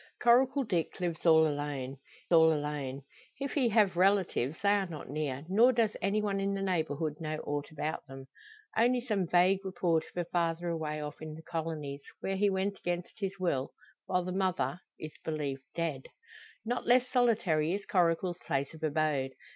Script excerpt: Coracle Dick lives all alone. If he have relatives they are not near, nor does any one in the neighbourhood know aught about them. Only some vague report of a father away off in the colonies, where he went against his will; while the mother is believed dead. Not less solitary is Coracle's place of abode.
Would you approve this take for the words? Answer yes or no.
no